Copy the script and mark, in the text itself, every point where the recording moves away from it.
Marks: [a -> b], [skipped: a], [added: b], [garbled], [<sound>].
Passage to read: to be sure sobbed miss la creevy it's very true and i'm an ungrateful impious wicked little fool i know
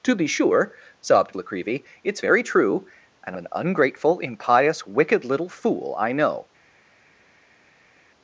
to be sure sobbed [skipped: miss] la creevy it's very true and [skipped: i'm] an ungrateful impious wicked little fool i know